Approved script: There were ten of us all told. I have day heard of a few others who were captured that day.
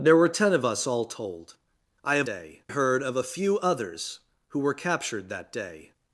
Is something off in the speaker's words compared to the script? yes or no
no